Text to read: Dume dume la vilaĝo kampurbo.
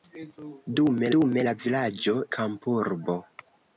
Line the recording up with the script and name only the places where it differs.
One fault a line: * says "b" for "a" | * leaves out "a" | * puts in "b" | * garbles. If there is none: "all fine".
all fine